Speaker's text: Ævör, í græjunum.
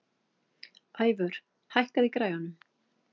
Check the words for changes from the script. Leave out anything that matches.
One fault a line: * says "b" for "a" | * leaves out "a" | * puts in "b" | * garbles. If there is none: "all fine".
* puts in "hækkaðu"